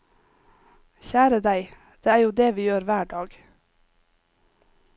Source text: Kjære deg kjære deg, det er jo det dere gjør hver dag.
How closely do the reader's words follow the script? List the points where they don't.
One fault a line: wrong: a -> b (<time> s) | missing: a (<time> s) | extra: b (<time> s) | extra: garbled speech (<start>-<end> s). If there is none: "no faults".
missing: kjære deg (1.7 s)
wrong: dere -> vi (2.6 s)